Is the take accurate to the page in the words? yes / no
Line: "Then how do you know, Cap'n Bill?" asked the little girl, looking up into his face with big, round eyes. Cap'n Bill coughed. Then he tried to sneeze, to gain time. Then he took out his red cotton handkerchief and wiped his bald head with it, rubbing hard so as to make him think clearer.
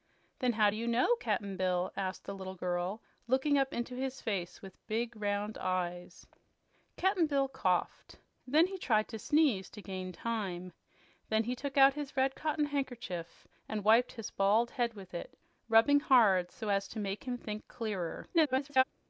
no